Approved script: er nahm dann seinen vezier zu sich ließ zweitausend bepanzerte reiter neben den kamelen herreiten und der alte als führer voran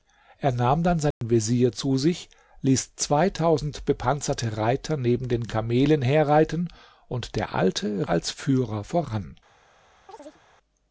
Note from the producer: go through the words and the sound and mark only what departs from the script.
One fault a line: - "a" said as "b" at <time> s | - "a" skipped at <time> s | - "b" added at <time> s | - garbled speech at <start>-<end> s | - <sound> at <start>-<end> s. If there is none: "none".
- dropout at 1.1-1.2 s
- chirp at 10.1-10.4 s